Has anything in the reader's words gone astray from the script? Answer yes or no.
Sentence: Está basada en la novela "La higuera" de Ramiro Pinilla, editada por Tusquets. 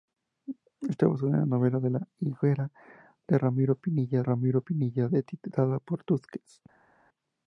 yes